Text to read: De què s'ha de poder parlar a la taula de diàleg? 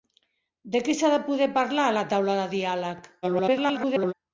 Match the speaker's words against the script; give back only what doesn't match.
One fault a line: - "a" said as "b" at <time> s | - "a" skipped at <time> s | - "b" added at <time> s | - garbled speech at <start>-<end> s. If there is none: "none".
- garbled speech at 3.2-4.1 s